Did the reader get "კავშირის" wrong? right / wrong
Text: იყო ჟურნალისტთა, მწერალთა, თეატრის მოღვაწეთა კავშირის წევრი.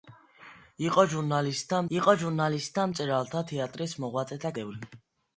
wrong